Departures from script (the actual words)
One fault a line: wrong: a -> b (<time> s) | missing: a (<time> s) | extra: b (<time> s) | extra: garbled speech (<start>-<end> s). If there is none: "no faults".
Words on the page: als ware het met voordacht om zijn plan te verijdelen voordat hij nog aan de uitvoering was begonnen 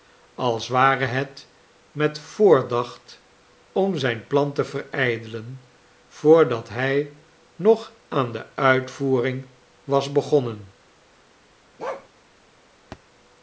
no faults